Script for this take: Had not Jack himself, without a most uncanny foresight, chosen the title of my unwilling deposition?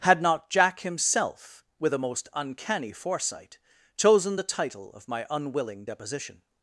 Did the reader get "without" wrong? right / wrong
wrong